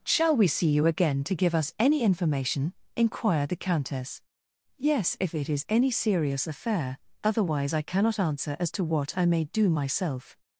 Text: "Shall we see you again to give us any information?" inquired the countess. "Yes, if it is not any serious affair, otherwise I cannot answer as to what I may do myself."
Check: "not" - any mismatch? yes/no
yes